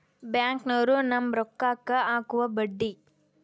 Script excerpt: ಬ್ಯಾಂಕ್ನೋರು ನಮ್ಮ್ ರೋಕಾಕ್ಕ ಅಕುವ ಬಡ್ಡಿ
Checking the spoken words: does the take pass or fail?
pass